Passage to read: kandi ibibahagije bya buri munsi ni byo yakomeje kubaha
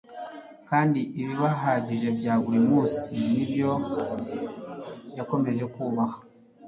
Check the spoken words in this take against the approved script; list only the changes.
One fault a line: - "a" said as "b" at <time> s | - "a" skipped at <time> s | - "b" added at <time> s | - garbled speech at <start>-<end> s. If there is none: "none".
none